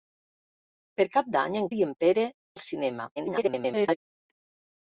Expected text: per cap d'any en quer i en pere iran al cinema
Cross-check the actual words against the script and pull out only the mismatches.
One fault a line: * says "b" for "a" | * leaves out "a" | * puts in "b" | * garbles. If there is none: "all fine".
* leaves out "quer"
* leaves out "iran"
* garbles